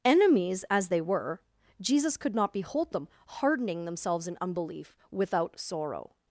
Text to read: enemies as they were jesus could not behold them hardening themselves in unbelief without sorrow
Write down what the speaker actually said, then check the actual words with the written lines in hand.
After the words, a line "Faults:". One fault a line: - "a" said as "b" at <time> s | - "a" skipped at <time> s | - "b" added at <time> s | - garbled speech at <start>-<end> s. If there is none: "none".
enemies as they were jesus could not behold them hardening themselves in unbelief without sorrow
Faults:
none